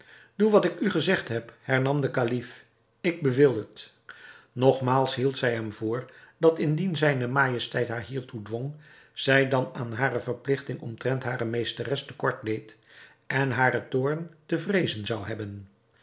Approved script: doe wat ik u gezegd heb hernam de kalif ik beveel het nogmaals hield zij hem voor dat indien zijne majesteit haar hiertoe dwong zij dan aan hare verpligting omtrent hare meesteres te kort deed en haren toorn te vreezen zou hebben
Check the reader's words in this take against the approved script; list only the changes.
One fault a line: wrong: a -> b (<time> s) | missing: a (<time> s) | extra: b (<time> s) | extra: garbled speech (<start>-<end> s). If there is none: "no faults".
no faults